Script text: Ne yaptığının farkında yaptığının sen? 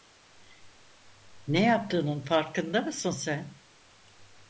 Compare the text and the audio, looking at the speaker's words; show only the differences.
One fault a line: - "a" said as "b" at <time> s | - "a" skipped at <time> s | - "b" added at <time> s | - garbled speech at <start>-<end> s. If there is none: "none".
- "yaptığının" said as "mısın" at 2.8 s